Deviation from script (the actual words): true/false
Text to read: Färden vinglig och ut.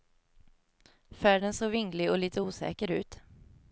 true